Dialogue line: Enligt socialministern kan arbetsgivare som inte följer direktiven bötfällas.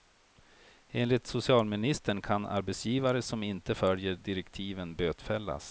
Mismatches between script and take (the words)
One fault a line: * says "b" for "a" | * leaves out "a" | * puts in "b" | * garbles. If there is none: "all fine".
all fine